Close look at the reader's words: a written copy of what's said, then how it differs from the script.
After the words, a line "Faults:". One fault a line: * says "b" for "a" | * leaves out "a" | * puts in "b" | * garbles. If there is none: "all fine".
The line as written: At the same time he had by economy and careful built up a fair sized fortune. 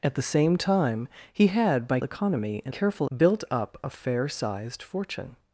At the same time he had by economy and careful built up a fair sized fortune.
Faults:
all fine